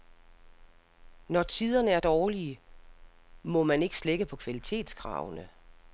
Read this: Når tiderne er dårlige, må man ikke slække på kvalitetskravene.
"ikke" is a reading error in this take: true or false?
false